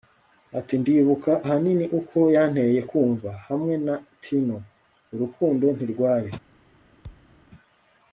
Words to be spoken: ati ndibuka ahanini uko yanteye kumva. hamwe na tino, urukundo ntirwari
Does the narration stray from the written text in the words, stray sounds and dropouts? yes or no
yes